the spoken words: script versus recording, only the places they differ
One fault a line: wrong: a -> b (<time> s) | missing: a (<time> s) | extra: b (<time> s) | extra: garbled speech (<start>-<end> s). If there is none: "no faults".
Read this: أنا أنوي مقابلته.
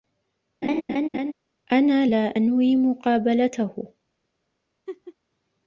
extra: لا (2.0 s)